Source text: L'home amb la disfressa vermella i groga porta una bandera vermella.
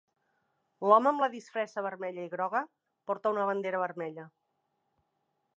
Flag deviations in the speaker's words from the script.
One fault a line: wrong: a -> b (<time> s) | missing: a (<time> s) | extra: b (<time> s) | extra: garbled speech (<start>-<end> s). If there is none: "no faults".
no faults